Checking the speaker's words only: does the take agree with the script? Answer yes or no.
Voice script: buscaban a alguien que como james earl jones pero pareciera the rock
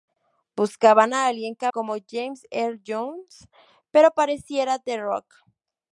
yes